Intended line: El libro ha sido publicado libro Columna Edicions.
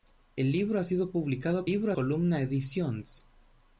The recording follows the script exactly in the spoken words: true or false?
true